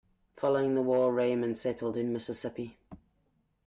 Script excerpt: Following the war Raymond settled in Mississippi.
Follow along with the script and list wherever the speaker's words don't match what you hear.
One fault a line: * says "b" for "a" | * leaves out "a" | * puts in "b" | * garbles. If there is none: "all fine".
all fine